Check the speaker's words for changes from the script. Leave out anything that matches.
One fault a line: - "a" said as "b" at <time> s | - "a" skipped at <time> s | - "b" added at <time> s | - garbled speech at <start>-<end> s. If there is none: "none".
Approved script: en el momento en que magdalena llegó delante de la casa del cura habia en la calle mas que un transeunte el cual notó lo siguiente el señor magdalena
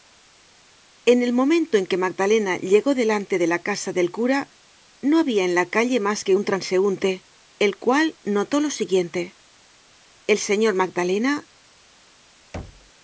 - "no" added at 5.0 s